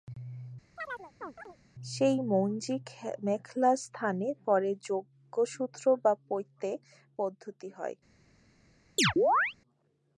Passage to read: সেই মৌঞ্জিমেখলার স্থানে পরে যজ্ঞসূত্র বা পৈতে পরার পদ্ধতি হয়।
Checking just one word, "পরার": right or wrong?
wrong